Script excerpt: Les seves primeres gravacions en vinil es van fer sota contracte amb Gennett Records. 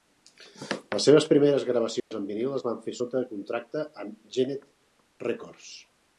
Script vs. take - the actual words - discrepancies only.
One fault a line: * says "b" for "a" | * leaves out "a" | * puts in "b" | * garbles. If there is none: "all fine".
all fine